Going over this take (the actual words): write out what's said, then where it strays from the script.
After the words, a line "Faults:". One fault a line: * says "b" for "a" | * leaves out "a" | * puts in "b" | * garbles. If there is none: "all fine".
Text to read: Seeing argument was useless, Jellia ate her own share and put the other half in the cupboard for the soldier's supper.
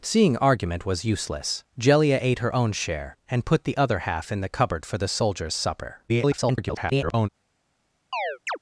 Seeing argument was useless, Jellia ate her own share and put the other half in the cupboard for the soldier's supper. [garbled]
Faults:
* garbles